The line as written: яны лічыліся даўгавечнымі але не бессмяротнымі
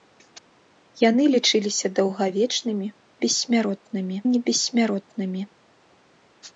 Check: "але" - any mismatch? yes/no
yes